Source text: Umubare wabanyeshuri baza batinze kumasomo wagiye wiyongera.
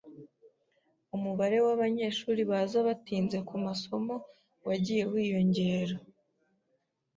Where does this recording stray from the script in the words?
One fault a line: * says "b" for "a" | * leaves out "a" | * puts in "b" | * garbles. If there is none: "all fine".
all fine